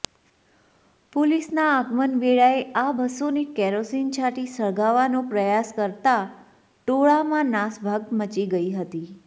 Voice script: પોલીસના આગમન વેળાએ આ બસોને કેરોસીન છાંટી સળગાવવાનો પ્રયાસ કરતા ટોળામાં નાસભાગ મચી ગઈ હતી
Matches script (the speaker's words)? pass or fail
pass